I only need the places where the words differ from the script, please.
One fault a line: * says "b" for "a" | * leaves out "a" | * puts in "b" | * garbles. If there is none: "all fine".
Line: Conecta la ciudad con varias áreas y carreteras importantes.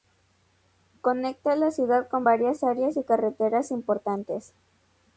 all fine